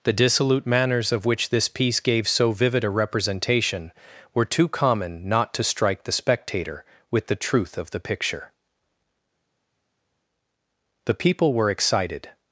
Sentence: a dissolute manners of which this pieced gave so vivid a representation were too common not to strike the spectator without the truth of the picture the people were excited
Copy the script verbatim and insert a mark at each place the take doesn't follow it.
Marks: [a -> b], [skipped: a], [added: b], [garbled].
[a -> the] dissolute manners of which this [pieced -> piece] gave so vivid a representation were too common not to strike the spectator [without -> with] the truth of the picture the people were excited